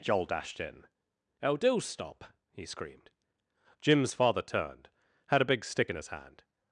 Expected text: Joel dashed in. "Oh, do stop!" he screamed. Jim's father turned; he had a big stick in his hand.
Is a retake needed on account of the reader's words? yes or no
yes